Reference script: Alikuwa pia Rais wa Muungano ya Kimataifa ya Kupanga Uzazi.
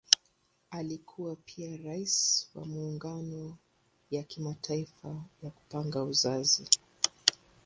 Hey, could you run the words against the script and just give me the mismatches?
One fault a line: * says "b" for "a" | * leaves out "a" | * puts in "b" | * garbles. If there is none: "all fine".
all fine